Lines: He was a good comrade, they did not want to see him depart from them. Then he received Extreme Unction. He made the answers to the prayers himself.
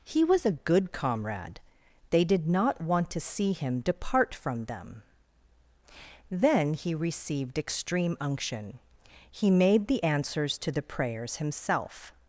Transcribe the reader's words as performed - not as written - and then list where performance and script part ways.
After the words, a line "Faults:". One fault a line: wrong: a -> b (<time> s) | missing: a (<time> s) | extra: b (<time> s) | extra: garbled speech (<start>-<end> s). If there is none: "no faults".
He was a good comrade, they did not want to see him depart from them. Then he received Extreme Unction. He made the answers to the prayers himself.
Faults:
no faults